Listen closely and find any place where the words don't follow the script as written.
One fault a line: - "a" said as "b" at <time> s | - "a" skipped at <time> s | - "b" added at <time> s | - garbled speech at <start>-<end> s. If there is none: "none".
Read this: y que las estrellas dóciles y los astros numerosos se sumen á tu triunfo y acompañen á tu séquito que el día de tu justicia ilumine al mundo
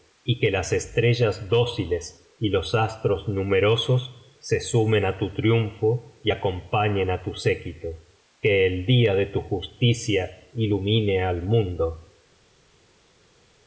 none